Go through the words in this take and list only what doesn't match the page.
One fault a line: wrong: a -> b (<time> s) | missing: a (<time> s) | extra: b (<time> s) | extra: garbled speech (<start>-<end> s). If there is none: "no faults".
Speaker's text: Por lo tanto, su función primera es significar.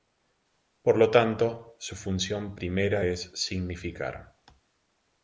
no faults